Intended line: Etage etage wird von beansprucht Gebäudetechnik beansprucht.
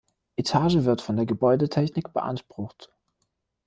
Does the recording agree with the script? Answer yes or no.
no